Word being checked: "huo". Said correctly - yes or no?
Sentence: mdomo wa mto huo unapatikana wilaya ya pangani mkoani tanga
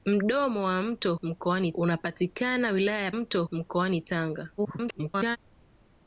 no